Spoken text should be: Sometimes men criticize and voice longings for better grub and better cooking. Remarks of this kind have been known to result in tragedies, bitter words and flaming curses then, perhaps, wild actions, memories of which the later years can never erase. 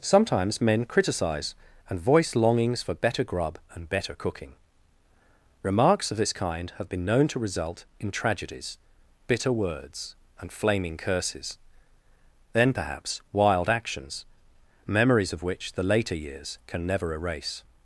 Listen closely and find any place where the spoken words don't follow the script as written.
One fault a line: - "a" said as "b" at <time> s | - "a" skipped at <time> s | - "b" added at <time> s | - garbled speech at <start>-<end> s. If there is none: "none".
none